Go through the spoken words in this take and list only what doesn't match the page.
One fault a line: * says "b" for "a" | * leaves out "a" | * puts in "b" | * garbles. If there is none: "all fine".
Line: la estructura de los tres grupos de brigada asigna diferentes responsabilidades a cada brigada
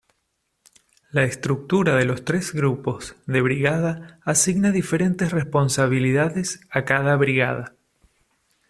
all fine